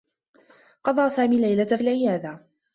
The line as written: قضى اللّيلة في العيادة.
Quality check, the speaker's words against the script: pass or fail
fail